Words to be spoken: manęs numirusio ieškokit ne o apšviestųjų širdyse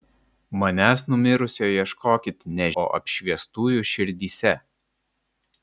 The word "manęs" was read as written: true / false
true